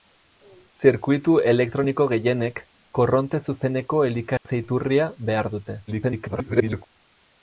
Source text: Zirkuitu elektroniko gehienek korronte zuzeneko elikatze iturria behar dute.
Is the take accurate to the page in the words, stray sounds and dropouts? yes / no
no